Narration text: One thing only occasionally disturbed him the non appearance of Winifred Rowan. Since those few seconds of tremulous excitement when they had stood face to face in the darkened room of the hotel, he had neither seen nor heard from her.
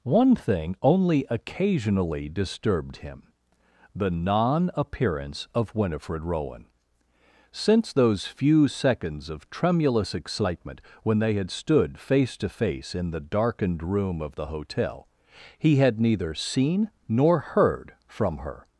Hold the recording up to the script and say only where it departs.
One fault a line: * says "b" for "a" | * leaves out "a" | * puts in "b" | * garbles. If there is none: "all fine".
all fine